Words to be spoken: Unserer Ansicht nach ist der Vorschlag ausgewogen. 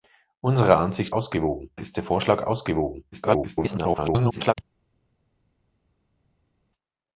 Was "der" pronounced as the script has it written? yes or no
yes